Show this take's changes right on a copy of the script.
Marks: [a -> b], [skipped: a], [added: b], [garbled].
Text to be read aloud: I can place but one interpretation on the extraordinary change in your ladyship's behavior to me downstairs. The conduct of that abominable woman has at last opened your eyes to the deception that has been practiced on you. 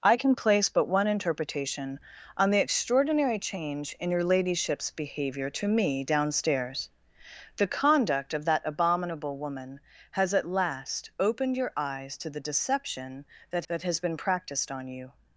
I can place but one interpretation on the extraordinary change in your ladyship's behavior to me downstairs. The conduct of that abominable woman has at last opened your eyes to the deception that [added: that] has been practiced on you.